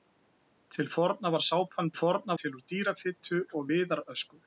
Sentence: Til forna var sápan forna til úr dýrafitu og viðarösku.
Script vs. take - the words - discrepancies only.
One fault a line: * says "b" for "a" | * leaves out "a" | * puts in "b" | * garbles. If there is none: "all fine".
all fine